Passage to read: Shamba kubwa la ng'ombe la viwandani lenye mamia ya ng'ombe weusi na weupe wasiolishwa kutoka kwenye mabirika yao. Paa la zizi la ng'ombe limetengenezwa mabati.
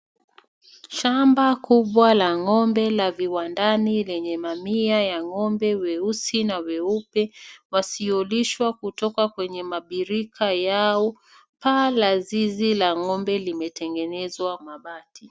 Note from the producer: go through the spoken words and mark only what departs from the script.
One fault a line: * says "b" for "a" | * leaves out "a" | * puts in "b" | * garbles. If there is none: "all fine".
all fine